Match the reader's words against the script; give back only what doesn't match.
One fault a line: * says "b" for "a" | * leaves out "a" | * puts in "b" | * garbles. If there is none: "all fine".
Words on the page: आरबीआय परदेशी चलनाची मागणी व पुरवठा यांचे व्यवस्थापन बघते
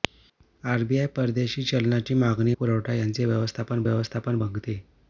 * leaves out "व"
* puts in "व्यवस्थापन"